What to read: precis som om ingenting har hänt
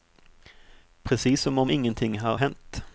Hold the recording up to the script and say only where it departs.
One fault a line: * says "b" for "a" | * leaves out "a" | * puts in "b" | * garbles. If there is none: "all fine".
all fine